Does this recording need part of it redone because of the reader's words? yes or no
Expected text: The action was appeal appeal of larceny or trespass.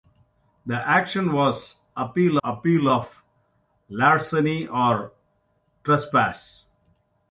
no